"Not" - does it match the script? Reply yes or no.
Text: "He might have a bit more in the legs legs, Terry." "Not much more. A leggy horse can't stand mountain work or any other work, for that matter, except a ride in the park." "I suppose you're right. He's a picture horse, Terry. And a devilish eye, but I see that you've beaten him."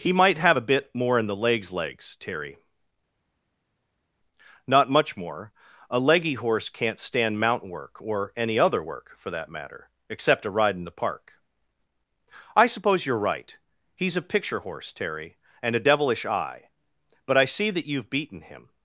yes